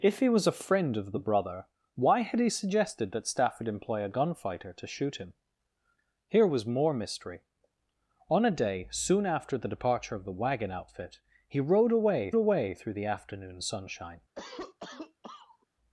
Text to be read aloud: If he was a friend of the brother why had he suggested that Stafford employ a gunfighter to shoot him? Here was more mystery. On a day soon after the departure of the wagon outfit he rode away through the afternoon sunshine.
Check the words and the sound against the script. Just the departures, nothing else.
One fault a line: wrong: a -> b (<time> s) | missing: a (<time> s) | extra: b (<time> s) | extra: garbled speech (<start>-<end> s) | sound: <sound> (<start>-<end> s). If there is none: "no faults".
extra: away (12.3 s)
sound: cough (14.4-15.7 s)